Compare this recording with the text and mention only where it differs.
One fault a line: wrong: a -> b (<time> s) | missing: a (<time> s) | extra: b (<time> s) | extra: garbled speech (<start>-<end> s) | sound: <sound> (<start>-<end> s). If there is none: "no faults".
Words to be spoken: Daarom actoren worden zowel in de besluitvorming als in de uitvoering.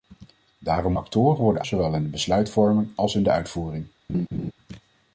sound: laugh (4.1-4.5 s)